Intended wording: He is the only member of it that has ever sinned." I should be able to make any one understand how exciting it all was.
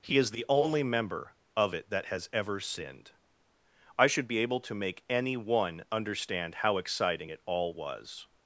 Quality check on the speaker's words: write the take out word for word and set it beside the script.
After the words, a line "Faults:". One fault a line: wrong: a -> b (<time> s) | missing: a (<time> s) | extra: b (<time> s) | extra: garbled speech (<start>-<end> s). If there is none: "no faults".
He is the only member of it that has ever sinned." I should be able to make any one understand how exciting it all was.
Faults:
no faults